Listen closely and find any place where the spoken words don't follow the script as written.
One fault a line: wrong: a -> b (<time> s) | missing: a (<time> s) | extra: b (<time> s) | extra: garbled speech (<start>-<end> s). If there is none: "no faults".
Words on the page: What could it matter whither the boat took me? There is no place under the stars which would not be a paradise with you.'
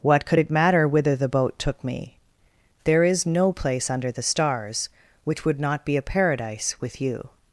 no faults